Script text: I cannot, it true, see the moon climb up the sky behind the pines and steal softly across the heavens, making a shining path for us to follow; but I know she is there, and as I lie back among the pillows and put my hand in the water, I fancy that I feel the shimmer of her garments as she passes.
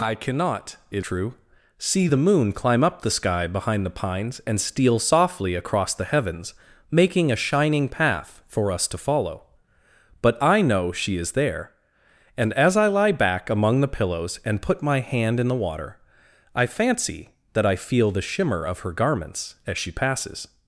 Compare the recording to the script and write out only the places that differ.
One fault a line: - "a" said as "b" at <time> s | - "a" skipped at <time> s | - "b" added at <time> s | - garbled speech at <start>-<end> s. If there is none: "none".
none